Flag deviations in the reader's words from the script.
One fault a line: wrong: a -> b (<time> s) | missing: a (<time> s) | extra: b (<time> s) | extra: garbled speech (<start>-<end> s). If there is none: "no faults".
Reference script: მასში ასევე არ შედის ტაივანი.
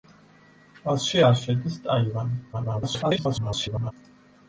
missing: ასევე (1.2 s)
extra: garbled speech (2.5-3.9 s)